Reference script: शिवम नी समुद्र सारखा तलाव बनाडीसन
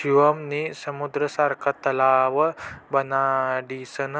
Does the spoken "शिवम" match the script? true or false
true